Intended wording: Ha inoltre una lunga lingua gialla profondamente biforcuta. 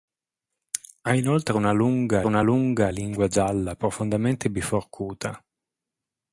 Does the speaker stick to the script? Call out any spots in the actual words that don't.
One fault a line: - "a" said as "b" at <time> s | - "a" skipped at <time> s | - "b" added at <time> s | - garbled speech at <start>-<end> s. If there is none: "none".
- "una lunga" added at 2.3 s